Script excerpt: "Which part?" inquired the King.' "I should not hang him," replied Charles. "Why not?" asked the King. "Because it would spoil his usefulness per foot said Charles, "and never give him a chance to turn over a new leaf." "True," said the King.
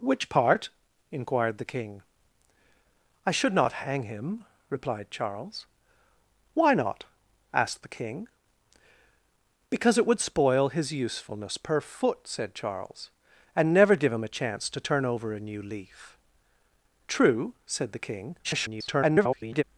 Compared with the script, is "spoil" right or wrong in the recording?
right